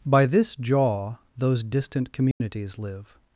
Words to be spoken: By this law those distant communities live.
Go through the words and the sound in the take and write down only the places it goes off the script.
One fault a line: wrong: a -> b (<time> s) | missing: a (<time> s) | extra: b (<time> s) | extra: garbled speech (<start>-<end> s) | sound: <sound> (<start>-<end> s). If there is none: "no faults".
wrong: law -> jaw (0.6 s)
sound: dropout (2.3-2.4 s)